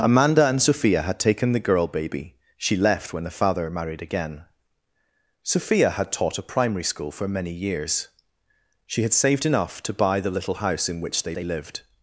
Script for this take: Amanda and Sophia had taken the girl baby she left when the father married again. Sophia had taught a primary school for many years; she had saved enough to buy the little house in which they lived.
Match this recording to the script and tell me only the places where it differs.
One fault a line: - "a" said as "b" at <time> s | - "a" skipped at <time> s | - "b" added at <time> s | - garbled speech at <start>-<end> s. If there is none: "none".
- "they" added at 11.3 s